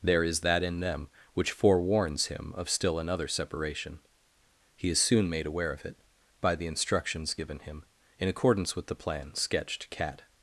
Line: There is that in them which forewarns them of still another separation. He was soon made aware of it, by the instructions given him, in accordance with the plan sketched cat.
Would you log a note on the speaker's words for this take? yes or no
yes